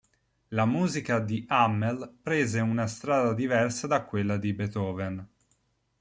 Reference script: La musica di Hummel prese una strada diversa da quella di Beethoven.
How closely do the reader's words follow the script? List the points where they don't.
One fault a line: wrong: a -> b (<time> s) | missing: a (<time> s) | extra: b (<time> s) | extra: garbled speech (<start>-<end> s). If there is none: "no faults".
no faults